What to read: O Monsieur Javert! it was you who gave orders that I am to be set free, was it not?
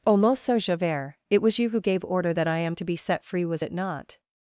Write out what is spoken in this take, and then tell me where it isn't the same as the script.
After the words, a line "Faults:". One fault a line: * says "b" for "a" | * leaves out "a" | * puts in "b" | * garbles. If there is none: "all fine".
O Monsieur Javert! it was you who gave order that I am to be set free, was it not?
Faults:
* says "order" for "orders"